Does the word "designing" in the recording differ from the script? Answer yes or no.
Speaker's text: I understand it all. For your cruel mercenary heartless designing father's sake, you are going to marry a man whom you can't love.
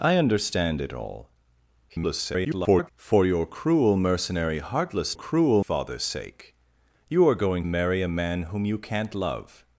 yes